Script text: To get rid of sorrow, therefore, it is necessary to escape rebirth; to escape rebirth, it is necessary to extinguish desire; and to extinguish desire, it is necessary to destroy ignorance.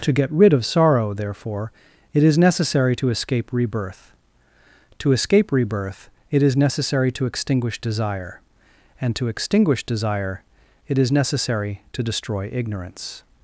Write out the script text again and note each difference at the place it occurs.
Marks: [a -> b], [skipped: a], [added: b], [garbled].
To get rid of sorrow, therefore, it is necessary to escape rebirth; to escape rebirth, it is necessary to extinguish desire; and to extinguish desire, it is necessary to destroy ignorance.